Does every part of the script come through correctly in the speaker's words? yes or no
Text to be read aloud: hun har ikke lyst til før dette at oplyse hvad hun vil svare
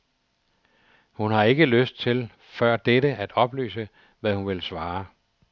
yes